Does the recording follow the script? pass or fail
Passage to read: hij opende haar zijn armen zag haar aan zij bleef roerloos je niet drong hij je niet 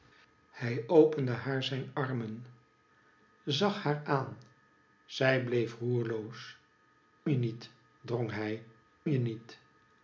pass